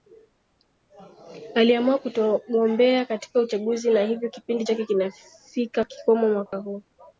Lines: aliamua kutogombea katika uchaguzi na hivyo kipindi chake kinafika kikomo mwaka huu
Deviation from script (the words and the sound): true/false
true